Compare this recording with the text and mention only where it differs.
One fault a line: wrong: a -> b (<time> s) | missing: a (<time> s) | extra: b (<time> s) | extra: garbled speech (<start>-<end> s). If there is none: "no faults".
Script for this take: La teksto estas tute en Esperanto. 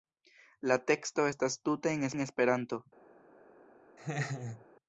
extra: en (2.1 s)